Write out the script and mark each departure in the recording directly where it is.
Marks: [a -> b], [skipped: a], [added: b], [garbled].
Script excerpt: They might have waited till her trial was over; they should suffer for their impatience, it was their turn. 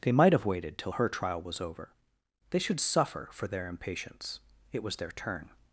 They might have waited till her trial was over; they should suffer for their impatience, it was their turn.